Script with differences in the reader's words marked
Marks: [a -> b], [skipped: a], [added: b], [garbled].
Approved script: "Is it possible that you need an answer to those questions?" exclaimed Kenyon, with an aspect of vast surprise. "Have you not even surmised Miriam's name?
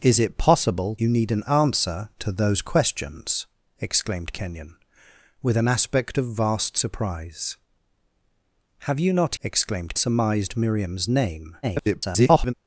"Is it possible [skipped: that] you need an answer to those questions?" exclaimed Kenyon, with an aspect of vast surprise. "Have you not [even -> exclaimed] surmised Miriam's name? [garbled]